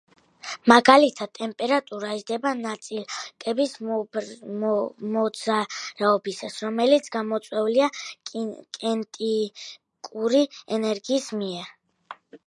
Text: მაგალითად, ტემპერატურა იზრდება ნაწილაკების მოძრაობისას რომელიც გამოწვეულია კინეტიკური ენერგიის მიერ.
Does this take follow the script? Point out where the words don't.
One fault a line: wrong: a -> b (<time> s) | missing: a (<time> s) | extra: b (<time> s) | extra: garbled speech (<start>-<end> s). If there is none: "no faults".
no faults